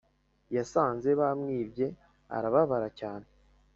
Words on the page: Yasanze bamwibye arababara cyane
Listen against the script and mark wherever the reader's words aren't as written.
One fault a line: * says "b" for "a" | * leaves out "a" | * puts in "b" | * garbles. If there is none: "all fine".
all fine